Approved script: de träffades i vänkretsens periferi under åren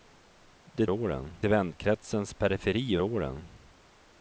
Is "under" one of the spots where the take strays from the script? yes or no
yes